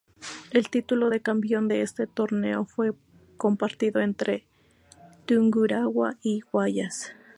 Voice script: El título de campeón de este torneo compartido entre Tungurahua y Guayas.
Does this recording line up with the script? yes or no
no